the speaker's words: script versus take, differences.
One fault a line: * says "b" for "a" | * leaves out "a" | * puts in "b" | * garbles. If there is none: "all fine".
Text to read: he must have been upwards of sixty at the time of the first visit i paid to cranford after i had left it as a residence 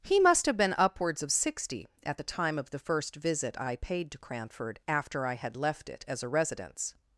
all fine